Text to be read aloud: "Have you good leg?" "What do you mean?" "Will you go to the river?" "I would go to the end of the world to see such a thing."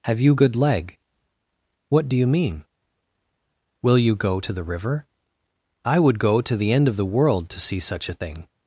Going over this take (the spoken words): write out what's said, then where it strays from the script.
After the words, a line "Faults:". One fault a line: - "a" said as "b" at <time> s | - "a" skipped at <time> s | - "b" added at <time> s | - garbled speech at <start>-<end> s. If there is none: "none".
"Have you good leg?" "What do you mean?" "Will you go to the river?" "I would go to the end of the world to see such a thing."
Faults:
none